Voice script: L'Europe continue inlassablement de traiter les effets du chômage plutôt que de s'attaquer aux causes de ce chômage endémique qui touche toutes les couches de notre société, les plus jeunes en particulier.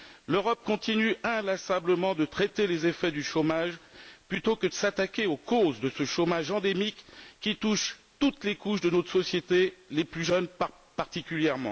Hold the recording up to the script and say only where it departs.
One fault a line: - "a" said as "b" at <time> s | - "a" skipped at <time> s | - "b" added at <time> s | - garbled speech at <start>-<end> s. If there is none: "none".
none